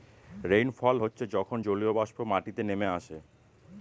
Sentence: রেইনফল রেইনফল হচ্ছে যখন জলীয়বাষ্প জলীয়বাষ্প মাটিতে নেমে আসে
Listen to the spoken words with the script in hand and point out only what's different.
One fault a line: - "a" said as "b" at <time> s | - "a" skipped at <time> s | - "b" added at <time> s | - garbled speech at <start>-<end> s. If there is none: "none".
- "রেইনফল" skipped at 0.9 s
- "জলীয়বাষ্প" skipped at 2.2 s